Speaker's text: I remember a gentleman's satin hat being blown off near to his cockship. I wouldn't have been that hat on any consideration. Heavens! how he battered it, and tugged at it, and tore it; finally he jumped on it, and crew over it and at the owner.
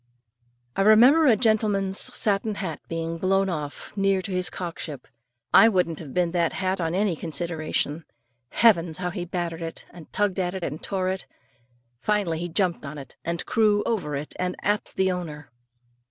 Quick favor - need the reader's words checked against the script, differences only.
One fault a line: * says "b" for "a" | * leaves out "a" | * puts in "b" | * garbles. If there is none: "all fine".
all fine